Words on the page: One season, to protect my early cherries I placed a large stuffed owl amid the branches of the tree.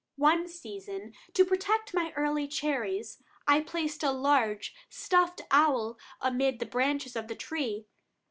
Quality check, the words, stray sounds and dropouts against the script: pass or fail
pass